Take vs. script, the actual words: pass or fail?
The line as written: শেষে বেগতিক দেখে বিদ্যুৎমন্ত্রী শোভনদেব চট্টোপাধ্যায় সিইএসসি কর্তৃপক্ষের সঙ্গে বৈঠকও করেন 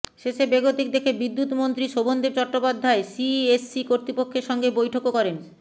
pass